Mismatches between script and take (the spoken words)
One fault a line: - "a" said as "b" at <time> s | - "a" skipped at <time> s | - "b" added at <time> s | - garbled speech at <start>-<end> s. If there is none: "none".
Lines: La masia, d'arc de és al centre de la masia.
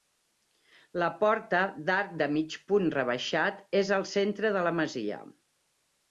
- "masia" said as "porta" at 1.2 s
- "mig punt rebaixat" added at 2.4 s